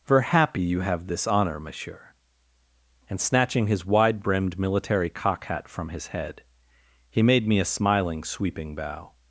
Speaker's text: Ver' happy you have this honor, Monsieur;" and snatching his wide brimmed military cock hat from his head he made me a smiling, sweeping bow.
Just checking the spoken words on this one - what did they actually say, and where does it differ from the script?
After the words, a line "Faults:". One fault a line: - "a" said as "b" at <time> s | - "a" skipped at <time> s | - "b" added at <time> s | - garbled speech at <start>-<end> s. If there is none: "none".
Ver' happy you have this honor, Monsieur;" and snatching his wide brimmed military cock hat from his head he made me a smiling, sweeping bow.
Faults:
none